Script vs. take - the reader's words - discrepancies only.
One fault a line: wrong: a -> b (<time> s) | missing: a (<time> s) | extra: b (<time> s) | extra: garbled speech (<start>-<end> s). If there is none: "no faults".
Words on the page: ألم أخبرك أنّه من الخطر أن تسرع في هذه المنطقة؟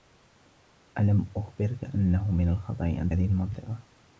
missing: تسرع في (3.1 s)